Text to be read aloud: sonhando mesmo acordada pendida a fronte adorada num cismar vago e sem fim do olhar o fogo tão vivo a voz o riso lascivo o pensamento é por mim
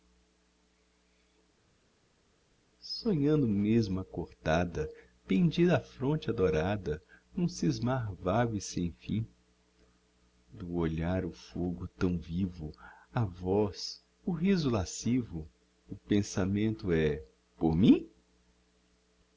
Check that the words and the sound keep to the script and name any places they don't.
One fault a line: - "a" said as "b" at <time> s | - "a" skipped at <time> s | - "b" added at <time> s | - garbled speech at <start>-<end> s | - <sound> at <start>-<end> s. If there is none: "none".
none